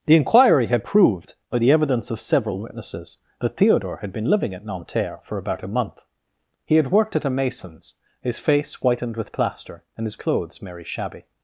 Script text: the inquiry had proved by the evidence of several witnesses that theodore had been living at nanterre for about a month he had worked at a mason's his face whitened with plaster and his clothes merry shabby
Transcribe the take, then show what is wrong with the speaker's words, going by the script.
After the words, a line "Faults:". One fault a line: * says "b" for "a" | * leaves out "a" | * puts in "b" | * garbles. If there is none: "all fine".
the inquiry had proved by the evidence of several witnesses that theodore had been living at nanterre for about a month he had worked at a mason's his face whitened with plaster and his clothes merry shabby
Faults:
all fine